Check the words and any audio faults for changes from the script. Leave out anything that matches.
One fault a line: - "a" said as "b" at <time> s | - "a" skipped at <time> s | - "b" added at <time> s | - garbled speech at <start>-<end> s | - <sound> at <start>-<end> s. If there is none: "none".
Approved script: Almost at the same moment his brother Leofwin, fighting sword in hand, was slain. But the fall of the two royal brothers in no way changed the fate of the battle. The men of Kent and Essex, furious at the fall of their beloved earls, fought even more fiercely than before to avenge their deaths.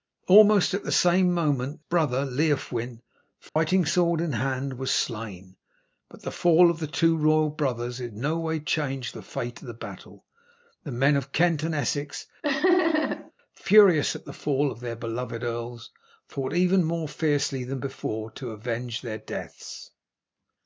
- "his" skipped at 1.9 s
- dropout at 3.5-3.6 s
- laugh at 12.4-13.3 s